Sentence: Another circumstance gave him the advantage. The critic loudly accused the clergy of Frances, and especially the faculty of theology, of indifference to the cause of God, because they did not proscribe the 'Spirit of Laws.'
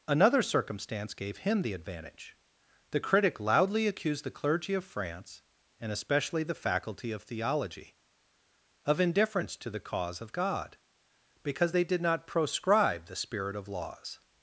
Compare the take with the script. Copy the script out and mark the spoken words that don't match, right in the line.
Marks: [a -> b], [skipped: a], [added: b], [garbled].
Another circumstance gave him the advantage. The critic loudly accused the clergy of [Frances, -> France] and especially the faculty of theology, of indifference to the cause of God, because they did not proscribe the 'Spirit of Laws.'